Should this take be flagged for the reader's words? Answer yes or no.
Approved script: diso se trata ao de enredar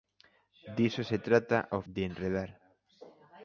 no